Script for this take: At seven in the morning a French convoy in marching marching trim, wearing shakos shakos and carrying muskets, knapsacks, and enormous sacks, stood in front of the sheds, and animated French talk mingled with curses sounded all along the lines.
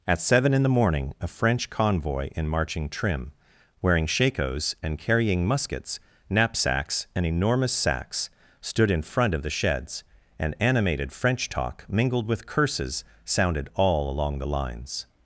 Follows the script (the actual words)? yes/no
no